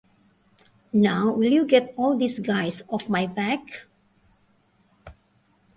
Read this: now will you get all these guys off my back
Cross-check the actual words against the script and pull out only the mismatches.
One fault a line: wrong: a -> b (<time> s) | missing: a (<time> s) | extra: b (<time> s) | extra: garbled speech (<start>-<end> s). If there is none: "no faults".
no faults